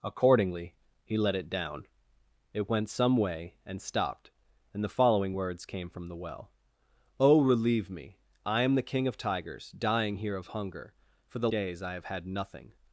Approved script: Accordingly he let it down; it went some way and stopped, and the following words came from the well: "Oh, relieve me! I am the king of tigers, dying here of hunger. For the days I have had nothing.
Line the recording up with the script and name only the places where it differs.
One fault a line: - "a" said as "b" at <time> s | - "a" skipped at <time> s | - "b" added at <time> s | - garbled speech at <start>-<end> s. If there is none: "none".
none